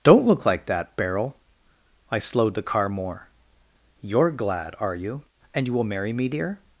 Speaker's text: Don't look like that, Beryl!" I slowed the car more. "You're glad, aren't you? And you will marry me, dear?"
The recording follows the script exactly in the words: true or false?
false